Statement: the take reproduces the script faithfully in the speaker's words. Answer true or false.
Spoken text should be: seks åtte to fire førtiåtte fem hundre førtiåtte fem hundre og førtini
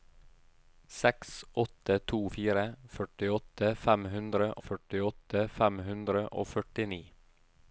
true